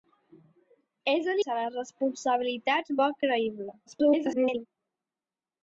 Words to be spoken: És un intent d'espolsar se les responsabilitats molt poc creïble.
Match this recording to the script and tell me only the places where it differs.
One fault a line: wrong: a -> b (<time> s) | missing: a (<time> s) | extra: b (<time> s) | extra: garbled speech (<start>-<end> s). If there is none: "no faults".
missing: intent d'espolsar (1.4 s)
missing: molt (3.0 s)
extra: garbled speech (3.9-4.7 s)